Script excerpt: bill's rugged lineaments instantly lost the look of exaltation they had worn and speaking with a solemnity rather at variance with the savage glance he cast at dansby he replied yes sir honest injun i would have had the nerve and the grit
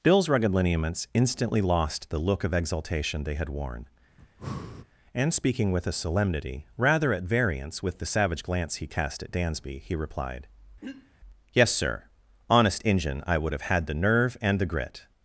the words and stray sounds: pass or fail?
fail